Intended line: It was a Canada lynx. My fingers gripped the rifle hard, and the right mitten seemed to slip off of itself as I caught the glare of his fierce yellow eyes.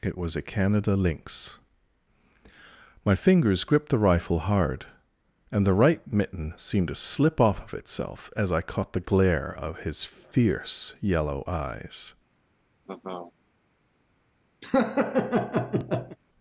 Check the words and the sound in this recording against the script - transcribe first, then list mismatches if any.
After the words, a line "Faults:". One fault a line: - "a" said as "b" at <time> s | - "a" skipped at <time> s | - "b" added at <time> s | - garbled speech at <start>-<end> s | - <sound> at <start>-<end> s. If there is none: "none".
It was a Canada lynx. My fingers gripped the rifle hard, and the right mitten seemed to slip off of itself as I caught the glare of his fierce yellow eyes.
Faults:
- laugh at 12.8-13.3 s
- laugh at 14.6-16.2 s